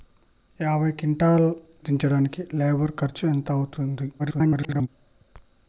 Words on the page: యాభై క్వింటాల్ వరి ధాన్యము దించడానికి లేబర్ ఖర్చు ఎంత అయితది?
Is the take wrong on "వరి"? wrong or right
wrong